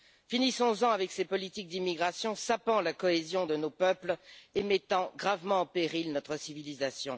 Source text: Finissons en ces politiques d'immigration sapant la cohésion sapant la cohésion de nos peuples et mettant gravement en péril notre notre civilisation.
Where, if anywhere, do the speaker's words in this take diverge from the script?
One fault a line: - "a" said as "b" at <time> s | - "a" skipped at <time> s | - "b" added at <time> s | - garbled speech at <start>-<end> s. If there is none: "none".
- "avec" added at 0.9 s
- "sapant la cohésion" skipped at 3.5 s
- "notre" skipped at 6.4 s